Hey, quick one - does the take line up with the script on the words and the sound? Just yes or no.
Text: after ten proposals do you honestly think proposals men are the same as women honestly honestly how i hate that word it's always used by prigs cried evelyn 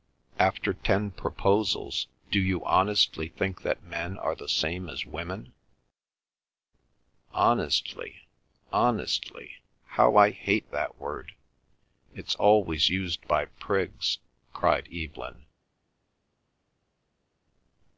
no